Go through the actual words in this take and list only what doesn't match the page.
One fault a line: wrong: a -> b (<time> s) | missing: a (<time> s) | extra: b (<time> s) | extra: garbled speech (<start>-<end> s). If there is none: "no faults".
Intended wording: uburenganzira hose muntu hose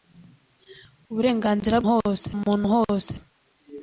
no faults